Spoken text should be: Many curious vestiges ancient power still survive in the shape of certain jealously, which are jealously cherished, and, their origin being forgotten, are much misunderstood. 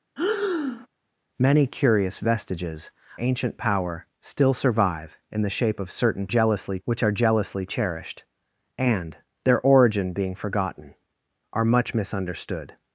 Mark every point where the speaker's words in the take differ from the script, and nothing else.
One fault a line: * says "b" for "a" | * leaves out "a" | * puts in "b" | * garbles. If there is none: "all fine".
all fine